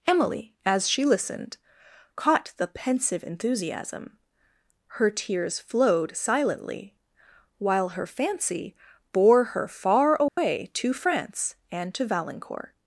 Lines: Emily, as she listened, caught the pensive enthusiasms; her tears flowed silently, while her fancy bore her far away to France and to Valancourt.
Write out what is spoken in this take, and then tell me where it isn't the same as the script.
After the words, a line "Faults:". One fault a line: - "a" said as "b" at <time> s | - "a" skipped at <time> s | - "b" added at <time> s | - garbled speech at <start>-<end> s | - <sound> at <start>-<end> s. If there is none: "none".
Emily, as she listened, caught the pensive enthusiasm; her tears flowed silently, while her fancy bore her far away to France and to Valancourt.
Faults:
- "enthusiasms" said as "enthusiasm" at 3.2 s
- dropout at 10.3-10.4 s